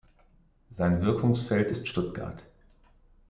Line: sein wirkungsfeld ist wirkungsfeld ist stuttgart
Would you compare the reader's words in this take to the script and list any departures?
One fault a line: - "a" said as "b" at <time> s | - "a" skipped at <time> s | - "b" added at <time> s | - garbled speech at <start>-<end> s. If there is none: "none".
- "wirkungsfeld ist" skipped at 1.9 s